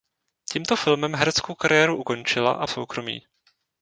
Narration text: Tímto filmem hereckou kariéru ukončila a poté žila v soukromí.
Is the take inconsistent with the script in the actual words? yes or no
yes